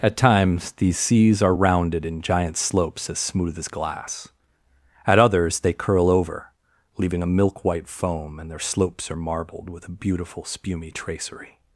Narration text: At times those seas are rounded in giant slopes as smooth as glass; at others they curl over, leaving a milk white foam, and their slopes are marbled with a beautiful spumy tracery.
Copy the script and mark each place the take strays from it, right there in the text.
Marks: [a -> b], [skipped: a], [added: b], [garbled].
At times [those -> these] seas are rounded in giant slopes as smooth as glass; at others they curl over, leaving a milk white foam, and their slopes are marbled with a beautiful spumy tracery.